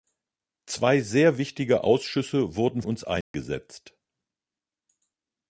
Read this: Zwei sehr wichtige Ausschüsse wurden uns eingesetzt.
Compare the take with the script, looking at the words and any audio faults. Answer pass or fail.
fail